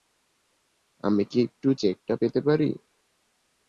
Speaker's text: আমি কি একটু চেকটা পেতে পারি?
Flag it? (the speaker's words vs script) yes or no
no